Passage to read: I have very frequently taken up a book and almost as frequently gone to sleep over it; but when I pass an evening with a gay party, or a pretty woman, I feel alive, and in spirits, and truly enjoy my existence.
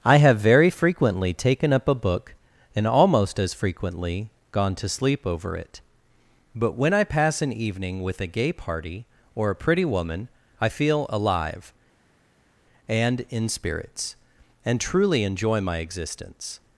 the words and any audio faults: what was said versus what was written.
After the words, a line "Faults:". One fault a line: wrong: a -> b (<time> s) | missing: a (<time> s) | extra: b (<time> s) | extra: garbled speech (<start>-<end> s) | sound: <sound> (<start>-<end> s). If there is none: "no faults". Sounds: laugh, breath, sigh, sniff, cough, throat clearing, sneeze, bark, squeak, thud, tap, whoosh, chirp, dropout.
I have very frequently taken up a book and almost as frequently gone to sleep over it; but when I pass an evening with a gay party, or a pretty woman, I feel alive, and in spirits, and truly enjoy my existence.
Faults:
no faults